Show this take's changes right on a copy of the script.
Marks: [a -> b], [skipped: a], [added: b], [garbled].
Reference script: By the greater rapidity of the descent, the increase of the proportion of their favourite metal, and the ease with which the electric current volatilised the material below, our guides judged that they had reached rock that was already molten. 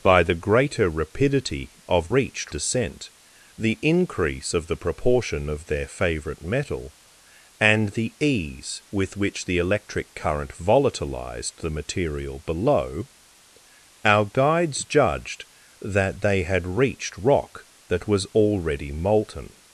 By the greater rapidity of [the -> reached] descent, the increase of the proportion of their favourite metal, and the ease with which the electric current volatilised the material below, our guides judged that they had reached rock that was already molten.